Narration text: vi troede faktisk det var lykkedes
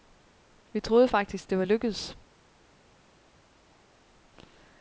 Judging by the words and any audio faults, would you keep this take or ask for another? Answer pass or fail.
pass